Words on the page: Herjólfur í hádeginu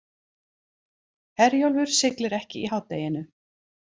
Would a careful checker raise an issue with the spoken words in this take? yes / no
yes